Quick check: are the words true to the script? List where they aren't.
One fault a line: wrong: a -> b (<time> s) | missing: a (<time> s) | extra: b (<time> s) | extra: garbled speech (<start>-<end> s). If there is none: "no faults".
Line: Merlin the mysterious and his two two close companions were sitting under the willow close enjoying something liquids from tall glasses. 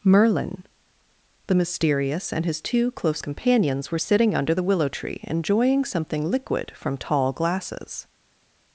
missing: two (2.9 s)
wrong: close -> tree (4.9 s)
wrong: liquids -> liquid (6.3 s)